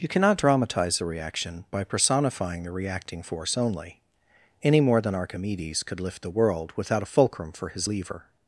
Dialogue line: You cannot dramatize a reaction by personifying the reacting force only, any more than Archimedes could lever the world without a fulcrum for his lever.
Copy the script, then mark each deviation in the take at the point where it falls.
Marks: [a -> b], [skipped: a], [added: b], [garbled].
You cannot dramatize a reaction by personifying the reacting force only, any more than Archimedes could [lever -> lift] the world without a fulcrum for his lever.